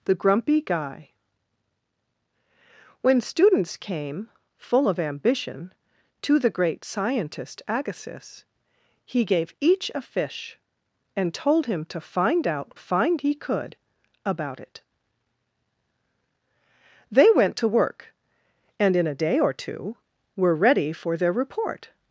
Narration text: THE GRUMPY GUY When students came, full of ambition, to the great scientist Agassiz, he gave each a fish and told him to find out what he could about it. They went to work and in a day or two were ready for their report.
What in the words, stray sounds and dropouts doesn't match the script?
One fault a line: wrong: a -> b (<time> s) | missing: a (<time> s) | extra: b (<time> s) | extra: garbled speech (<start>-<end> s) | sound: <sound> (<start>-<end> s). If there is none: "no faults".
wrong: what -> find (12.8 s)